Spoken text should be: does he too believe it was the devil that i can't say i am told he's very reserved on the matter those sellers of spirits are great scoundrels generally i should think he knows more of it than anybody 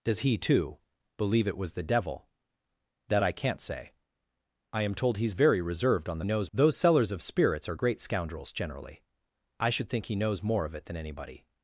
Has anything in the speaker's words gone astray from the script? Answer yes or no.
yes